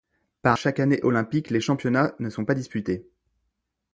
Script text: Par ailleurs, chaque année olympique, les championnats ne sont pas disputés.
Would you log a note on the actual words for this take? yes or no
yes